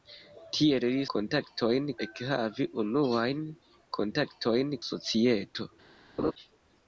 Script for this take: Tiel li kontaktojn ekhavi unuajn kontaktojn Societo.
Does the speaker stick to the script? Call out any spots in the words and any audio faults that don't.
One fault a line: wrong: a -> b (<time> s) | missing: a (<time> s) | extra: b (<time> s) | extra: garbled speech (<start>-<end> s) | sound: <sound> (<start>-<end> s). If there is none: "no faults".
sound: laugh (6.2-6.3 s)